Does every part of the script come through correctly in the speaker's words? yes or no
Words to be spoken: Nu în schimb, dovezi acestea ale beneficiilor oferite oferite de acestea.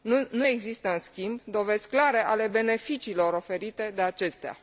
no